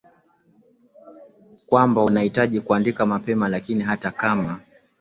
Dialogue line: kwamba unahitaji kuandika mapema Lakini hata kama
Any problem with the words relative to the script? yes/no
no